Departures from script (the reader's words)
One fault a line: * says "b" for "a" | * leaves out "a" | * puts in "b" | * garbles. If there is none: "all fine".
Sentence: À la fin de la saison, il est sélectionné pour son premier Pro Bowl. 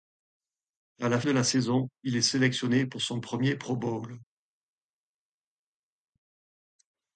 * leaves out "fin"